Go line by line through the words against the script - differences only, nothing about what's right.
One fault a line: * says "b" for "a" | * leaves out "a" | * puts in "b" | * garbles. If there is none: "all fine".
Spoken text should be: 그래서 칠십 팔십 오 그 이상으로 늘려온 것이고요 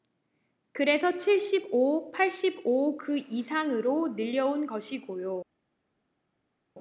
* puts in "오"